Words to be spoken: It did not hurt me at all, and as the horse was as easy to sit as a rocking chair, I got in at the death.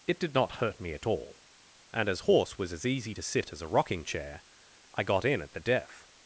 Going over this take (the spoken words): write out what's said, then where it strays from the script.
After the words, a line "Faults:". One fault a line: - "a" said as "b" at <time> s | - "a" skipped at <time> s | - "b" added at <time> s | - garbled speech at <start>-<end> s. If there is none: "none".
It did not hurt me at all, and as horse was as easy to sit as a rocking chair, I got in at the death.
Faults:
- "the" skipped at 2.2 s